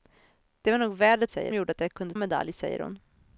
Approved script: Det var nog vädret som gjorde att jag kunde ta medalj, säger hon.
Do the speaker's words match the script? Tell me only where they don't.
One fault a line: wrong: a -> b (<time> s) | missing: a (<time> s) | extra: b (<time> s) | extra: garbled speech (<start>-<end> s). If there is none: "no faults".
wrong: som -> säger (1.3 s)
missing: ta (2.1 s)